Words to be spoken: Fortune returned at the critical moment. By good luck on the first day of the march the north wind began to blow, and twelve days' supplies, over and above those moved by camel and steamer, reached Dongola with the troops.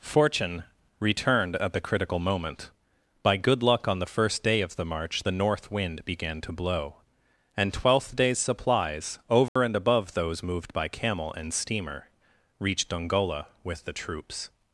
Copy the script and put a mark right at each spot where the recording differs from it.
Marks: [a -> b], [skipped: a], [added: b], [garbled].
Fortune returned at the critical moment. By good luck on the first day of the march the north wind began to blow, and [twelve -> twelfth] days' supplies, over and above those moved by camel and steamer, reached Dongola with the troops.